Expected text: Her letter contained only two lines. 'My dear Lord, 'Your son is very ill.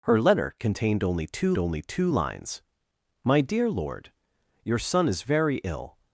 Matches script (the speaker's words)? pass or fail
fail